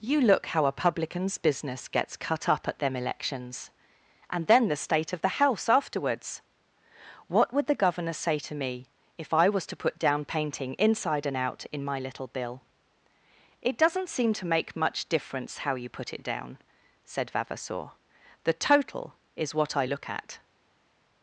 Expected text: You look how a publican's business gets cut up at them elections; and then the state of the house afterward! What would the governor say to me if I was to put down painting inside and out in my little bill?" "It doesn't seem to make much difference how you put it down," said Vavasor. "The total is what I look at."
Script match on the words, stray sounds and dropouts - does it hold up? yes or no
no